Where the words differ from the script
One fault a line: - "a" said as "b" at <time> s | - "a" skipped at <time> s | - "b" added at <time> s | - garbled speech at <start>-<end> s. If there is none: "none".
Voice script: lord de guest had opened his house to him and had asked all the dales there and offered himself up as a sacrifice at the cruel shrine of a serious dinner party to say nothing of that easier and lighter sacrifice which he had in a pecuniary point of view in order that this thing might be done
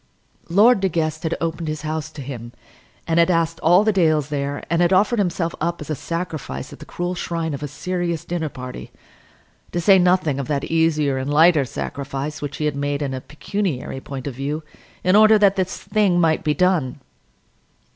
- "had" added at 4.8 s
- "made" added at 12.8 s